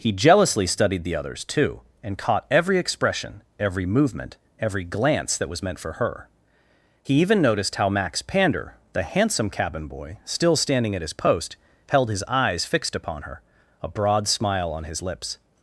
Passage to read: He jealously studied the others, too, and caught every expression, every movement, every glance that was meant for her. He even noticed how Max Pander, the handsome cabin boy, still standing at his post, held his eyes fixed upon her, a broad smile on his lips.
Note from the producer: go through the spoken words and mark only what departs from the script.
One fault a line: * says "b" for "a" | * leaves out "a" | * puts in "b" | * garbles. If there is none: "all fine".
all fine